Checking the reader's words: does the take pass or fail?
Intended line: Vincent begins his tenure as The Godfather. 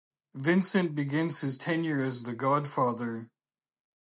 pass